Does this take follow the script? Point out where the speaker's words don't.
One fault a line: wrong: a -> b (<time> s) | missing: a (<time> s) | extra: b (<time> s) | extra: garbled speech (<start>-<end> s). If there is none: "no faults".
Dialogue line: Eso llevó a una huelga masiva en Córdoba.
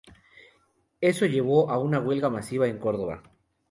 no faults